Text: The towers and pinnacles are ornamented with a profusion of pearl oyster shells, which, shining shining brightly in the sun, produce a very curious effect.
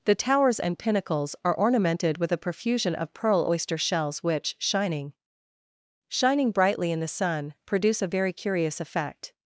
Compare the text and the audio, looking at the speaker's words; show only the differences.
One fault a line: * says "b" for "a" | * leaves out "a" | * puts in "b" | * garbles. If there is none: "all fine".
all fine